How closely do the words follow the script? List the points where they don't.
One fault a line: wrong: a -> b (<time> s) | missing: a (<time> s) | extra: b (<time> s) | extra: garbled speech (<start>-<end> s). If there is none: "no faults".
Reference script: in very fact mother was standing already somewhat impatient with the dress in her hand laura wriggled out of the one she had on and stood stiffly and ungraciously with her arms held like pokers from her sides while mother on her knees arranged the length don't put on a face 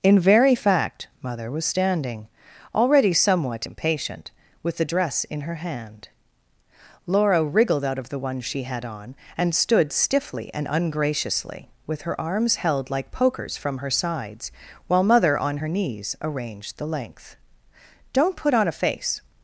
no faults